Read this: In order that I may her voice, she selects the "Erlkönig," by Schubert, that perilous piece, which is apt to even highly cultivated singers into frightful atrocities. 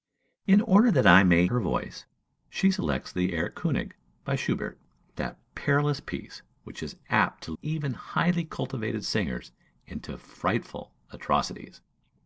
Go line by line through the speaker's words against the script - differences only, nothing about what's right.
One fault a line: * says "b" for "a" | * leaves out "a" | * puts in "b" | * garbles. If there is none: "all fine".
all fine